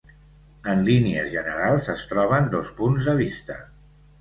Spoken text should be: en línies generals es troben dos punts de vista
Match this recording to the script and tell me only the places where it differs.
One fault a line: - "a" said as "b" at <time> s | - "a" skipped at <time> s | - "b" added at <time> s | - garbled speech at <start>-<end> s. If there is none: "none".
none